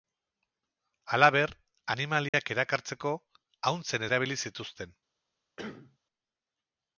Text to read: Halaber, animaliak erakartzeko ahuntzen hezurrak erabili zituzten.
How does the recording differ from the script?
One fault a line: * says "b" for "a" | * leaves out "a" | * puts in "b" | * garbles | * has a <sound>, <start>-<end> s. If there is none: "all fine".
* has a dropout, 2.3-2.3 s
* leaves out "hezurrak"
* has a cough, 5.6-6.0 s